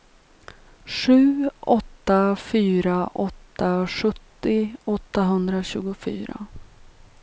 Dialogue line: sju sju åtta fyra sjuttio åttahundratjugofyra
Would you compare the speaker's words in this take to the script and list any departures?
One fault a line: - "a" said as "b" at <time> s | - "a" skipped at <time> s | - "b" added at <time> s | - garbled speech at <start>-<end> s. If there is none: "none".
- "sju" skipped at 1.5 s
- "åtta" added at 3.1 s